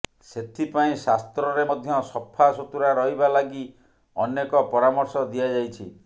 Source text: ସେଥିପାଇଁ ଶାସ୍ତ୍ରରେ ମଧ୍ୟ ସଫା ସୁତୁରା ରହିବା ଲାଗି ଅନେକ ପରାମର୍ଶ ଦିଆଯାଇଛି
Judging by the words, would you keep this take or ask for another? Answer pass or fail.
pass